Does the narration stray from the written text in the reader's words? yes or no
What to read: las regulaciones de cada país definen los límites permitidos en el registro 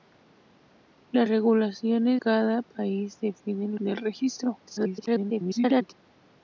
yes